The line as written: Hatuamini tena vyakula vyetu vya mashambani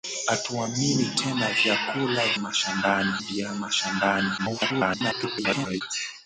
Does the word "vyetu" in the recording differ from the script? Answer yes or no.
yes